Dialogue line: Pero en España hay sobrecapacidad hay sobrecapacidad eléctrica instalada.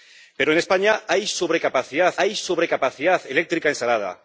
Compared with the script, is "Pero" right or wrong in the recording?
right